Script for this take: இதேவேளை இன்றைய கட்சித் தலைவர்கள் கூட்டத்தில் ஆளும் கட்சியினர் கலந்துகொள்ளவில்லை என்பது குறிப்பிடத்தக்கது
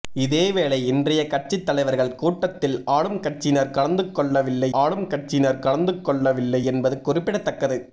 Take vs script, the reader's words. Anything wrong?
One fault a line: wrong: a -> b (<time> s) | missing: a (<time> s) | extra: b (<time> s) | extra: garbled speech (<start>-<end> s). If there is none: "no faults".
extra: ஆளும் கட்சியினர் கலந்துகொள்ளவில்லை (4.7 s)